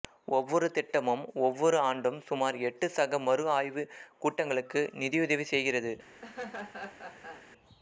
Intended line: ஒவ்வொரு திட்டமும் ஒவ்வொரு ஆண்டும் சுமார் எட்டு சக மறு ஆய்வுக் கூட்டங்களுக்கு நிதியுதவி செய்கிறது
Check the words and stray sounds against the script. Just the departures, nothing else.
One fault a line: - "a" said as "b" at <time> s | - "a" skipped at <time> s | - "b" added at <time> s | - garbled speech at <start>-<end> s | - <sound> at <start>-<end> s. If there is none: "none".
- laugh at 6.2-7.5 s